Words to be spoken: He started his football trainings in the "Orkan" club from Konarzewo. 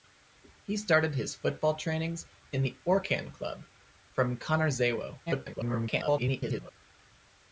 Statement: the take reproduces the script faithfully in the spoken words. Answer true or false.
false